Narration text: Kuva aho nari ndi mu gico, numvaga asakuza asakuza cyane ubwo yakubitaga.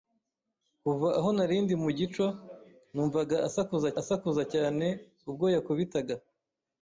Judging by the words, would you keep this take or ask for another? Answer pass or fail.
pass